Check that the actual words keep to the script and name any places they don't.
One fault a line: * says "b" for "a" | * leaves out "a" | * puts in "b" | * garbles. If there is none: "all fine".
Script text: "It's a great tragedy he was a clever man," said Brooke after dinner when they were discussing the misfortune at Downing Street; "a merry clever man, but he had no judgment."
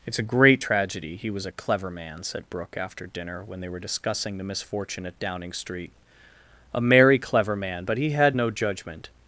all fine